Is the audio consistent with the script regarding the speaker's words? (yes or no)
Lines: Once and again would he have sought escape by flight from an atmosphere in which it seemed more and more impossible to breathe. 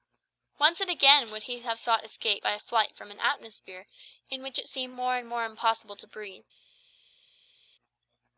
yes